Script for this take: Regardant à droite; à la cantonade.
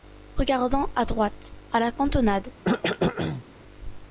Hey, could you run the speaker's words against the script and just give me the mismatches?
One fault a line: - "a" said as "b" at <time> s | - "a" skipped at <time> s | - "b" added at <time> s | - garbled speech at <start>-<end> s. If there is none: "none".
none